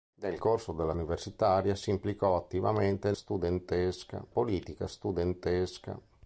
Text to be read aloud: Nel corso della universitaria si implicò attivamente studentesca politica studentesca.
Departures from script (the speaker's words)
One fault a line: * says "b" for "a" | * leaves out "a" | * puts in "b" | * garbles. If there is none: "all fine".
all fine